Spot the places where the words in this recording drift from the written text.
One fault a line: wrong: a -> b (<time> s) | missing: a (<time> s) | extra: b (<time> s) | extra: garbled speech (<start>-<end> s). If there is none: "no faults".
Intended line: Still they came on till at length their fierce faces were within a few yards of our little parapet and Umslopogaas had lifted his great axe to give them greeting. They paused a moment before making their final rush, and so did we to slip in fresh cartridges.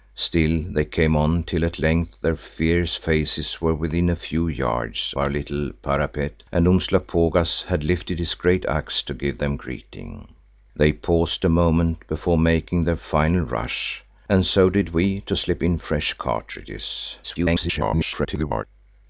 missing: of (5.1 s)
extra: garbled speech (17.2-18.6 s)